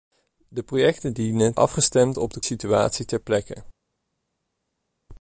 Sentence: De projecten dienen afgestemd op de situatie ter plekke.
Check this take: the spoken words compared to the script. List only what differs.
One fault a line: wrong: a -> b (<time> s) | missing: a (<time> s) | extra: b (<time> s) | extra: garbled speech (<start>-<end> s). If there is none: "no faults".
no faults